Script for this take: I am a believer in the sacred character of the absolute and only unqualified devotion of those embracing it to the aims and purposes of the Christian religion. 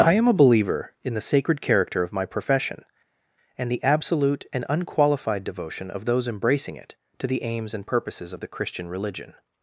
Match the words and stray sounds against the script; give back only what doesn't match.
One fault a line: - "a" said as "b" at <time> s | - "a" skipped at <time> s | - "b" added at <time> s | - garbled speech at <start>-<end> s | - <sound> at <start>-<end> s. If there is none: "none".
- "my profession and" added at 2.1 s
- "only" skipped at 4.7 s